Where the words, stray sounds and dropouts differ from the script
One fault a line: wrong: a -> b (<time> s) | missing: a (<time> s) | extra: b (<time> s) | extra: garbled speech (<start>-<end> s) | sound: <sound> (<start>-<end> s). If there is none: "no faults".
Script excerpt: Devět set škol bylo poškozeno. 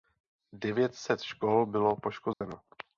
sound: dropout (2.3-2.4 s)